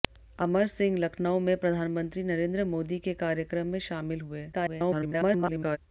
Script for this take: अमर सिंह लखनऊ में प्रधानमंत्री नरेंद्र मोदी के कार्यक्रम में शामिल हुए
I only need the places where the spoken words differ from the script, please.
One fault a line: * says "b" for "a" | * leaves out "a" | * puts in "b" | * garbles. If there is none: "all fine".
* garbles